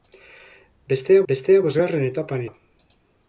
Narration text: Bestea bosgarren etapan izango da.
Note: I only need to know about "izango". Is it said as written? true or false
false